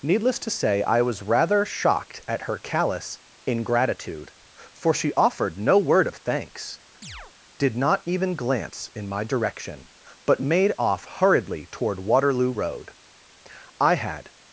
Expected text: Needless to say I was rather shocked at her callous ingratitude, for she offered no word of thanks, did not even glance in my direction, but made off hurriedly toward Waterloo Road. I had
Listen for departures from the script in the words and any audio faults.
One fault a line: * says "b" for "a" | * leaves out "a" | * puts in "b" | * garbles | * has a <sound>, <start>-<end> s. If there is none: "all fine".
* has a chirp, 7.0-7.3 s